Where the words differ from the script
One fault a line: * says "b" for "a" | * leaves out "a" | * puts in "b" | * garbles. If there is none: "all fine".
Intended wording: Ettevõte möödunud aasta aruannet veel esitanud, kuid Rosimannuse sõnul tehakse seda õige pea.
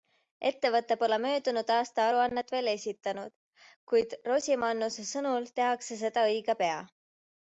* puts in "pole"